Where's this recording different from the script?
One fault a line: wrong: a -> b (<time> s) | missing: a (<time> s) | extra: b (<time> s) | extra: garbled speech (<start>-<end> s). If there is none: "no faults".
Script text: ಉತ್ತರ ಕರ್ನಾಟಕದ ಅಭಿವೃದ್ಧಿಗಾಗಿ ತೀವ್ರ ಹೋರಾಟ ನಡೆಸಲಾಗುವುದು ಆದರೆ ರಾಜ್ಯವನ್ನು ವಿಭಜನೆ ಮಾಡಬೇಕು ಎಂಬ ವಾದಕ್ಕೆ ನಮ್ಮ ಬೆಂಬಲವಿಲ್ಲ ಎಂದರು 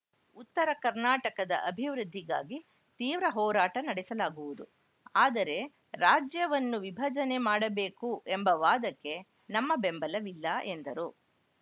no faults